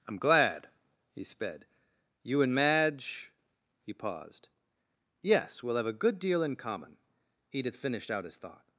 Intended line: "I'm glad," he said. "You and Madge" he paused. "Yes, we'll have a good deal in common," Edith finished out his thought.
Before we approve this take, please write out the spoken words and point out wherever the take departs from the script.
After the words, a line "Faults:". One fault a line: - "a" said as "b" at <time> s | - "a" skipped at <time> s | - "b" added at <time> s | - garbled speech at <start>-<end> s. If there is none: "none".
"I'm glad," he sped. "You and Madge" he paused. "Yes, we'll have a good deal in common," Edith finished out his thought.
Faults:
- "said" said as "sped" at 1.2 s